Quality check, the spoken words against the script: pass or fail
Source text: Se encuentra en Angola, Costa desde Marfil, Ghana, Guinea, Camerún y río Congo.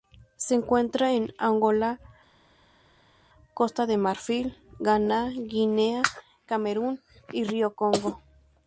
fail